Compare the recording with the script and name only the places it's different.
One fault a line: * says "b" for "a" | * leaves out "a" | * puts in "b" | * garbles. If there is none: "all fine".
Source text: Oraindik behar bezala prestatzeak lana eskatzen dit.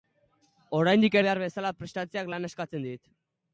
all fine